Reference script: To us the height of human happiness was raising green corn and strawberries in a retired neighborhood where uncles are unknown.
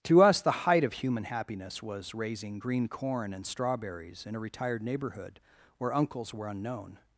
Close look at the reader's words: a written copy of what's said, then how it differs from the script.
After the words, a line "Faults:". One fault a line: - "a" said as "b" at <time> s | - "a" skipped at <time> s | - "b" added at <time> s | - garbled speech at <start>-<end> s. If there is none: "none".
To us the height of human happiness was raising green corn and strawberries in a retired neighborhood where uncles were unknown.
Faults:
- "are" said as "were" at 6.3 s